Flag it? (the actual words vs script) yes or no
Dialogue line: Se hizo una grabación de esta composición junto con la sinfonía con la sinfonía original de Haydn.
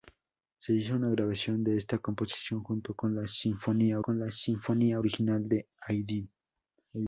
no